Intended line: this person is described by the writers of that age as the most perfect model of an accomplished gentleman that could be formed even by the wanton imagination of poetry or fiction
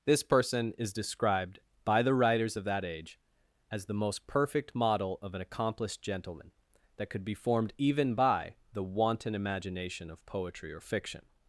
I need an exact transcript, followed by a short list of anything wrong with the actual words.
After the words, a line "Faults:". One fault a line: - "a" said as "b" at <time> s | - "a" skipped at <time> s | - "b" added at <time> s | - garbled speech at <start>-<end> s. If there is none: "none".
this person is described by the writers of that age as the most perfect model of an accomplished gentleman that could be formed even by the wanton imagination of poetry or fiction
Faults:
none